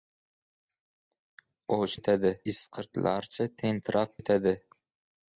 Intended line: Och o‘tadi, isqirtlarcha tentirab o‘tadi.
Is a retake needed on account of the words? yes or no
no